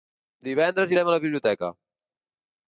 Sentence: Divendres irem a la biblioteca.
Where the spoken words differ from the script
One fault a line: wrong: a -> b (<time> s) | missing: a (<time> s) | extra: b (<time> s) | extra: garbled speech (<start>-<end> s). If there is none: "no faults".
no faults